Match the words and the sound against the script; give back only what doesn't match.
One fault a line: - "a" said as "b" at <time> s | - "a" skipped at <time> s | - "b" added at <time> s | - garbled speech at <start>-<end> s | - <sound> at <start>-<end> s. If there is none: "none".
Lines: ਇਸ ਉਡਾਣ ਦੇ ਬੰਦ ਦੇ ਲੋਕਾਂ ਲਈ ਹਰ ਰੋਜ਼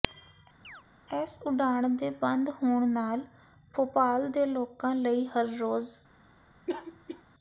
- chirp at 0.6-0.8 s
- "ਹੋਣ ਨਾਲ ਭੋਪਾਲ" added at 2.5 s
- cough at 6.7-7.2 s